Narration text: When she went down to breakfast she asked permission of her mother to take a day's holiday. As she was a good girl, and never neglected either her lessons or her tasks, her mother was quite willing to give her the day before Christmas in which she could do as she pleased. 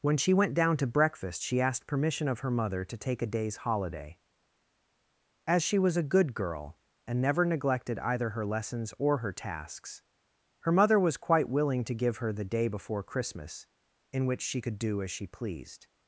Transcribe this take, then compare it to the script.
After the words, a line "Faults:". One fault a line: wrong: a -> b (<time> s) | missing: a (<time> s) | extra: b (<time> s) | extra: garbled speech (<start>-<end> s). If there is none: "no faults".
When she went down to breakfast she asked permission of her mother to take a day's holiday. As she was a good girl, and never neglected either her lessons or her tasks, her mother was quite willing to give her the day before Christmas in which she could do as she pleased.
Faults:
no faults